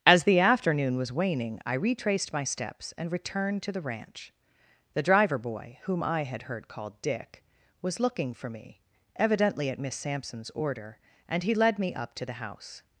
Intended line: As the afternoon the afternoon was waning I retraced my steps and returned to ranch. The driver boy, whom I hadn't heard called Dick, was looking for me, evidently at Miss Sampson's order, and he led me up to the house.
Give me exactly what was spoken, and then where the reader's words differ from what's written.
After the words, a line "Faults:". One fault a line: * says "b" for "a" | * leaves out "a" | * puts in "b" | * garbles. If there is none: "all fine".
As the afternoon was waning I retraced my steps and returned to the ranch. The driver boy, whom I had heard called Dick, was looking for me, evidently at Miss Sampson's order, and he led me up to the house.
Faults:
* leaves out "the afternoon"
* puts in "the"
* says "had" for "hadn't"